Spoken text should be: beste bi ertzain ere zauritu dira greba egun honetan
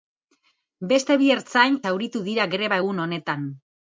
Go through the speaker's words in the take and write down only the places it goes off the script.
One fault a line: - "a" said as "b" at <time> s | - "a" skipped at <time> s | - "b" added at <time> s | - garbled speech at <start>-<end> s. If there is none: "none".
- "ere" skipped at 1.8 s